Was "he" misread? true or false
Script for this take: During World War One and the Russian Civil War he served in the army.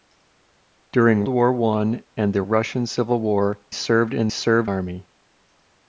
true